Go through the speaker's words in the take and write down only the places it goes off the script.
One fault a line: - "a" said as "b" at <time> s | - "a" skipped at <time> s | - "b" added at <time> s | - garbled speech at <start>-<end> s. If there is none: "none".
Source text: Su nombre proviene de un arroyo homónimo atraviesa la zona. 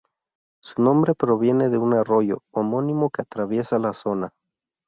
- "que" added at 3.1 s